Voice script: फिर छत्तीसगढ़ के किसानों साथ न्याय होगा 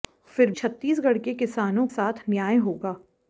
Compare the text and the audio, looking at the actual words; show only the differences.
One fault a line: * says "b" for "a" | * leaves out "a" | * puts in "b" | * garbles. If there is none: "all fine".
all fine